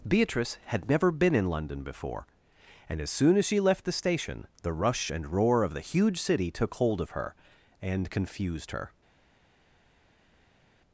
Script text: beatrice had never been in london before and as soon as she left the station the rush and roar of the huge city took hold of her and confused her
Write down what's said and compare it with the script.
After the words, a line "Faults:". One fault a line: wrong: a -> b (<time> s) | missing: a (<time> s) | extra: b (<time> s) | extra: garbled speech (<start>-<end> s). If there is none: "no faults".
beatrice had never been in london before and as soon as she left the station the rush and roar of the huge city took hold of her and confused her
Faults:
no faults